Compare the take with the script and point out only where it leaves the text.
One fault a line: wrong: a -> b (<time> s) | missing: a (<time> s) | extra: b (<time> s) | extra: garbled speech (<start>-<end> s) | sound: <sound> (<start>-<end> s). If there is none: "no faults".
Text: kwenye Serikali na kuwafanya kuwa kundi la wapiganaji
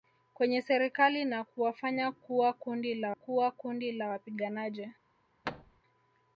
extra: kuwa kundi la (3.1 s)
sound: thud (5.4-5.8 s)